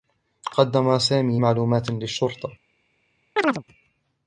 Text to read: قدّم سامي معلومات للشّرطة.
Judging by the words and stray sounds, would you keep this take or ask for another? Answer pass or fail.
fail